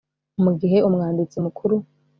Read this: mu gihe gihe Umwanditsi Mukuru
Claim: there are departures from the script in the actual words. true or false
true